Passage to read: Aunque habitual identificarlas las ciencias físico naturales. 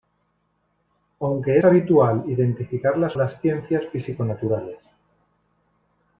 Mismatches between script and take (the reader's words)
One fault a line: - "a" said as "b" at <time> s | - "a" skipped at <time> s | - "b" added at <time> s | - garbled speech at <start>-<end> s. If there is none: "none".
none